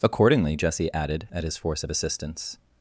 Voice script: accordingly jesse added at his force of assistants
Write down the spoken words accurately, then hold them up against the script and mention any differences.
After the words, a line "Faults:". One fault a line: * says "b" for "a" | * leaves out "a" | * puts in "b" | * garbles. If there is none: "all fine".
accordingly jesse added at his force of assistants
Faults:
all fine